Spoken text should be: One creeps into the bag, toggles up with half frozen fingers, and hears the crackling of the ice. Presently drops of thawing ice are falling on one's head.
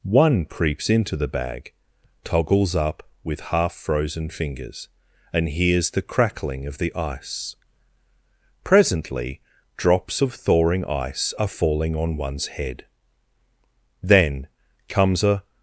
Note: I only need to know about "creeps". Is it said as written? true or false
true